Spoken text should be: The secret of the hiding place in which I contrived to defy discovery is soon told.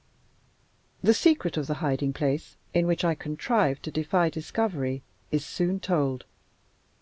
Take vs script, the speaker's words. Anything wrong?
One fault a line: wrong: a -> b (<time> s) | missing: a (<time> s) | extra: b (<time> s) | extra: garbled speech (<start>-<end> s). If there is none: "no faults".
no faults